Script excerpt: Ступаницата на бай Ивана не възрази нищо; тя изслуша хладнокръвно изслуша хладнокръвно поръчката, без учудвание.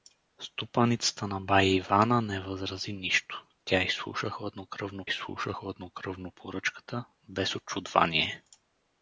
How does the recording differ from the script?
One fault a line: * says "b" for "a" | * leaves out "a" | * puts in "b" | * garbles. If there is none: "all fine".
all fine